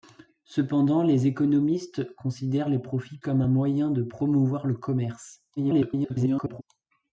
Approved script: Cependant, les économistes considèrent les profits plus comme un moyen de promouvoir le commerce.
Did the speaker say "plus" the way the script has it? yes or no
no